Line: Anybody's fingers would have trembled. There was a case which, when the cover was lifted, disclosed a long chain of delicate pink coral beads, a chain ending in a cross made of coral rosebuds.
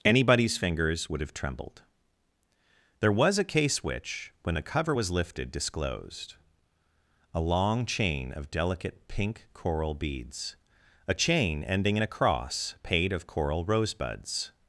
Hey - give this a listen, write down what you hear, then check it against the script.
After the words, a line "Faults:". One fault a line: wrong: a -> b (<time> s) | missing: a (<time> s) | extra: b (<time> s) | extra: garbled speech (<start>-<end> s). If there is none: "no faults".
Anybody's fingers would have trembled. There was a case which, when the cover was lifted, disclosed a long chain of delicate pink coral beads, a chain ending in a cross paid of coral rosebuds.
Faults:
wrong: made -> paid (12.8 s)